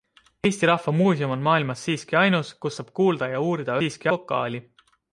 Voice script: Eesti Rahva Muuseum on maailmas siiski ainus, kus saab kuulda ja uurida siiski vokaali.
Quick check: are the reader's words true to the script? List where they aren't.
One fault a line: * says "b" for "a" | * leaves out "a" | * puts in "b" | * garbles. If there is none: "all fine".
all fine